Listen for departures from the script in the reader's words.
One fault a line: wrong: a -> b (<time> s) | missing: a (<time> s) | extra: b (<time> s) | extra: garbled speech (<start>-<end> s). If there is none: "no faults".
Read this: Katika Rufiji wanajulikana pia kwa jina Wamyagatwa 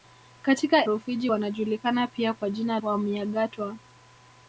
no faults